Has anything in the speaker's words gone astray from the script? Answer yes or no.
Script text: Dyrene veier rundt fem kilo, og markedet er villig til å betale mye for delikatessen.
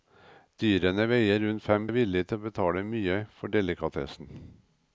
yes